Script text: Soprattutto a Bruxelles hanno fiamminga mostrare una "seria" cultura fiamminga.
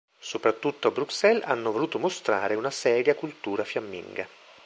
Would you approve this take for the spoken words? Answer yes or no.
no